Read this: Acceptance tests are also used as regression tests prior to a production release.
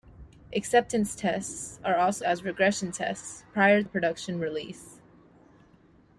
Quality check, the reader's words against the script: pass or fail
fail